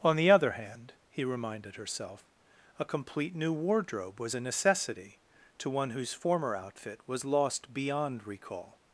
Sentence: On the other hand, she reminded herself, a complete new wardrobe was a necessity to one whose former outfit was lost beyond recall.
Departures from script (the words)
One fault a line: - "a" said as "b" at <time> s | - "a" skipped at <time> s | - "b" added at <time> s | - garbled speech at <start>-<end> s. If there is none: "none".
- "she" said as "he" at 1.1 s